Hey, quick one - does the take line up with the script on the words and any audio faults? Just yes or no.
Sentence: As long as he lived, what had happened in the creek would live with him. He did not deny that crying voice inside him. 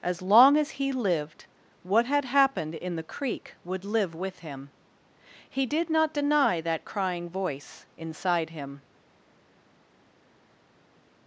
yes